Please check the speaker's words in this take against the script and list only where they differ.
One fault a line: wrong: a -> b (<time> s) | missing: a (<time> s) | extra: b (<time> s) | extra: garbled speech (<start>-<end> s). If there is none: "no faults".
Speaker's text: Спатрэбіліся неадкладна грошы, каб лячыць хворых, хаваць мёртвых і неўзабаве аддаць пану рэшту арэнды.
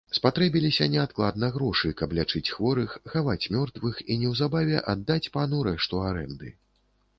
no faults